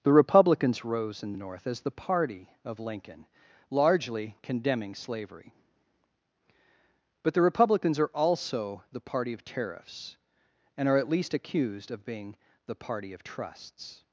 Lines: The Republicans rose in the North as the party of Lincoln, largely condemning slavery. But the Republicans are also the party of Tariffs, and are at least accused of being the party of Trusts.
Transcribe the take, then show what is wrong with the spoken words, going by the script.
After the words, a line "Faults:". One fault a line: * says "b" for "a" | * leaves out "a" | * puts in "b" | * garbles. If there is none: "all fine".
The Republicans rose in the North as the party of Lincoln, largely condemning slavery. But the Republicans are also the party of Tariffs, and are at least accused of being the party of Trusts.
Faults:
all fine